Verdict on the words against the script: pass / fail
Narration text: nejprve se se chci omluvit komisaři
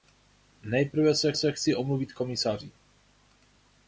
pass